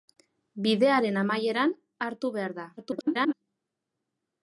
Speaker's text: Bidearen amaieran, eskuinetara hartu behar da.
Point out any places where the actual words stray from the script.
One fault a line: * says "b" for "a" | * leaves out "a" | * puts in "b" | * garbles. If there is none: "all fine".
* leaves out "eskuinetara"
* garbles